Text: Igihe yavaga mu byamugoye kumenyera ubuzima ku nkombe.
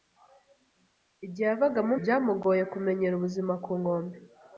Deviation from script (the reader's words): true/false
false